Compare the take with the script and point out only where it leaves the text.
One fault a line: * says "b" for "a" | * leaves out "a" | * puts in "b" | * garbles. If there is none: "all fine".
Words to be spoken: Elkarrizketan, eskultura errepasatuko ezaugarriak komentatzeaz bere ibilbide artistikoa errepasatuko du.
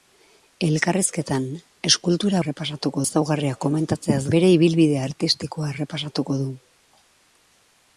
all fine